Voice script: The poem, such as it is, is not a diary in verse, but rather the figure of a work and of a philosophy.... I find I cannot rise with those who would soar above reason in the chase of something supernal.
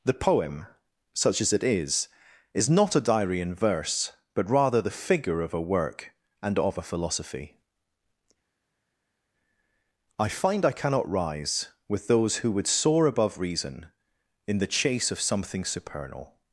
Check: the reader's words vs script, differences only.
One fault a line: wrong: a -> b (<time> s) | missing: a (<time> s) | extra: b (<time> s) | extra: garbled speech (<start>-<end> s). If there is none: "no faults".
no faults